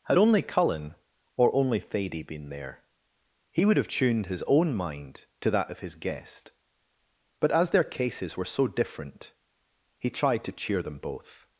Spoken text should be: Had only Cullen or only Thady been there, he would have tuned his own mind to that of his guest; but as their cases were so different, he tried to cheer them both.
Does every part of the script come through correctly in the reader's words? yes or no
yes